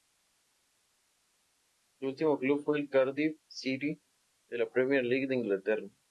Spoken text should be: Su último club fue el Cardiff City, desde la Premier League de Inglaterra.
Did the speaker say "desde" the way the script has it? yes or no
no